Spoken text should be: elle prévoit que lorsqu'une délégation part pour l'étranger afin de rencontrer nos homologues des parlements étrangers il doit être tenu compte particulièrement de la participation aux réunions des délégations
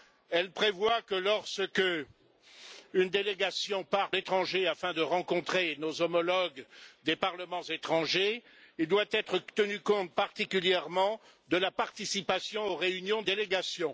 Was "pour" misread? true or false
true